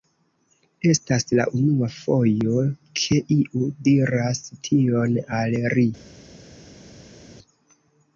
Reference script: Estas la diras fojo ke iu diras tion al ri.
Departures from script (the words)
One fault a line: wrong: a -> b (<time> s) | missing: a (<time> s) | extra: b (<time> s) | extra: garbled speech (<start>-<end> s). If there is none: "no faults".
wrong: diras -> unua (1.6 s)